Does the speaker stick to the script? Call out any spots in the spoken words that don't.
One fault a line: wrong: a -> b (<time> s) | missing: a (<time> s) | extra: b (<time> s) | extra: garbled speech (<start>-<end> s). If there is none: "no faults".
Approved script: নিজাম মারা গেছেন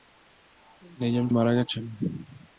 no faults